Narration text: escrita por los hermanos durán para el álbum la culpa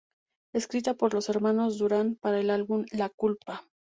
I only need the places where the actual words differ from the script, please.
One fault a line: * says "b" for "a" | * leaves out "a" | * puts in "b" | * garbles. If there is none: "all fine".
all fine